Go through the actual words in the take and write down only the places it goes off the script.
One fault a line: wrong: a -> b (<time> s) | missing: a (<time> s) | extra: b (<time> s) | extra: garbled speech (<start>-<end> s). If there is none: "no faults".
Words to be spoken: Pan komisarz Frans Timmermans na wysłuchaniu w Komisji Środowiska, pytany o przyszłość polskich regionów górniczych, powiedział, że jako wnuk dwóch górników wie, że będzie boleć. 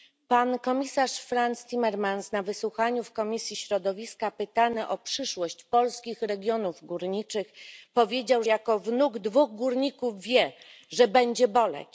missing: że (8.4 s)